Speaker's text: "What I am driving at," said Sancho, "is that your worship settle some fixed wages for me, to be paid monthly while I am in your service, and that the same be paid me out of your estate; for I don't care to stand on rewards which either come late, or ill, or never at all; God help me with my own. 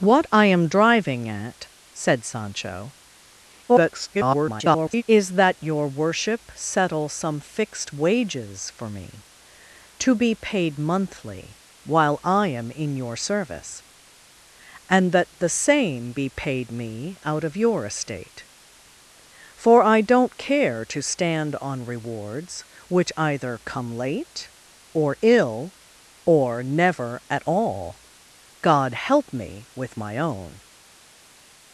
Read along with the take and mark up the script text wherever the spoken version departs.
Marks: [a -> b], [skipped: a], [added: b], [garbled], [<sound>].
"What I am driving at," said Sancho, [garbled] "is that your worship settle some fixed wages for me, to be paid monthly while I am in your service, and that the same be paid me out of your estate; for I don't care to stand on rewards which either come late, or ill, or never at all; God help me with my own.